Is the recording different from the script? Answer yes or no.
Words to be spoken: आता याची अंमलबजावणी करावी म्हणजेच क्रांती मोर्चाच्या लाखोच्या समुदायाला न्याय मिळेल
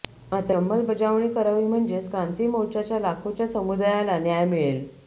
yes